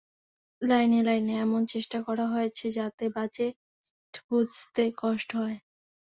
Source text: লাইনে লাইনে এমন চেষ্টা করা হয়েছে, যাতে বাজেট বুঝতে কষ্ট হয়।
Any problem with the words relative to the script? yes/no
no